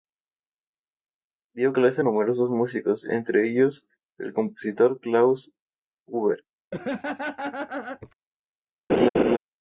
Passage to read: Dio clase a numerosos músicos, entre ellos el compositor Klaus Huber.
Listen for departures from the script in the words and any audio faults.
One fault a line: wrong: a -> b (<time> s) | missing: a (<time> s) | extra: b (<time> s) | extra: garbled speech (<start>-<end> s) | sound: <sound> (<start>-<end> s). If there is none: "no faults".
sound: laugh (6.7-8.1 s)
sound: laugh (8.9-9.4 s)